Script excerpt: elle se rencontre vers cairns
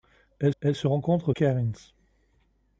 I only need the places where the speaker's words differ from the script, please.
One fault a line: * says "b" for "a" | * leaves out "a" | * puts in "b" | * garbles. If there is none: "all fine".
* puts in "elle"
* leaves out "vers"